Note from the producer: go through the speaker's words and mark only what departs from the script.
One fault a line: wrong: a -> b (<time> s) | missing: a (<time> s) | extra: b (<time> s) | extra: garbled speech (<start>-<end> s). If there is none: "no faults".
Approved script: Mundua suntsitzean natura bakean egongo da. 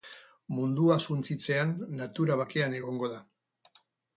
no faults